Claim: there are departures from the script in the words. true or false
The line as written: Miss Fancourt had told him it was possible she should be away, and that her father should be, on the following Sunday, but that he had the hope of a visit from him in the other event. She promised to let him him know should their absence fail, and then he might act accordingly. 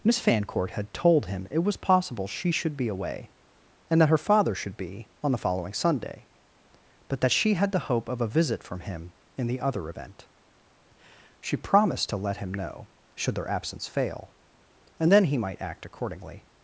true